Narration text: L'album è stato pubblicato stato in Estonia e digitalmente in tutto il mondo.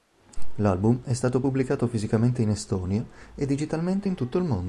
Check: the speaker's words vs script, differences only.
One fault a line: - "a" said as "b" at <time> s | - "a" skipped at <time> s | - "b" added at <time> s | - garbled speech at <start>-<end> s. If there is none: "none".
- "stato" said as "fisicamente" at 1.9 s